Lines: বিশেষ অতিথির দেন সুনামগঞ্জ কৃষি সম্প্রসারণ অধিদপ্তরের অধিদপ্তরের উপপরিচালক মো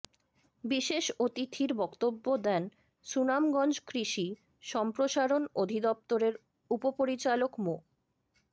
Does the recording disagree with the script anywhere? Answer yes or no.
yes